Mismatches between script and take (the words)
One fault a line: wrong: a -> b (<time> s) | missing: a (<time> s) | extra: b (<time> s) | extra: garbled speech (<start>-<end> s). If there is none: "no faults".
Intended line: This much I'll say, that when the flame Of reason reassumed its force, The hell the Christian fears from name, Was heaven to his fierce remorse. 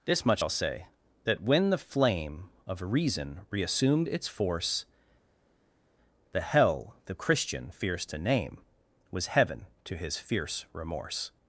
wrong: from -> to (8.1 s)